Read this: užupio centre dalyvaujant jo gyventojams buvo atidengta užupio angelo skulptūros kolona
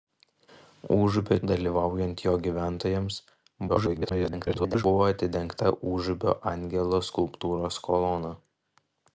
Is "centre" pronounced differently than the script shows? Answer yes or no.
yes